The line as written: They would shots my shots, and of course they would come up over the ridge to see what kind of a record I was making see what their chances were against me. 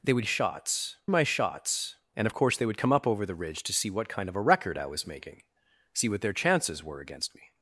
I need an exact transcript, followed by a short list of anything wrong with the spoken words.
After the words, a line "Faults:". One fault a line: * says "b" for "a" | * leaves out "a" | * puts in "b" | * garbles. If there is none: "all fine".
They would shots my shots, and of course they would come up over the ridge to see what kind of a record I was making see what their chances were against me.
Faults:
all fine